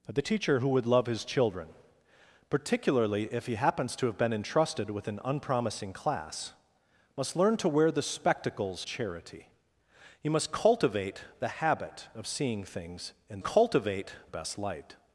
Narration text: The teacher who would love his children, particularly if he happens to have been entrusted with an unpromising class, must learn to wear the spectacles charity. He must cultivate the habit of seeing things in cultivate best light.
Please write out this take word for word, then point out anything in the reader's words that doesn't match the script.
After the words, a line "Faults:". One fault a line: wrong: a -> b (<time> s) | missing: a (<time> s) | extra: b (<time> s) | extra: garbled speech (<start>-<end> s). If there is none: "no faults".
The teacher who would love his children, particularly if he happens to have been entrusted with an unpromising class, must learn to wear the spectacles charity. He must cultivate the habit of seeing things in cultivate best light.
Faults:
no faults